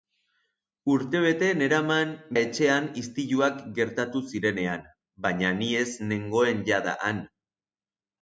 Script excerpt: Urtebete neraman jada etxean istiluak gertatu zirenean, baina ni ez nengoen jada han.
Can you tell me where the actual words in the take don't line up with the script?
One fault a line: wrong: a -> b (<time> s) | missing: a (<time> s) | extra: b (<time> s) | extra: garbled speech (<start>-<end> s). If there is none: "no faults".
missing: jada (2.1 s)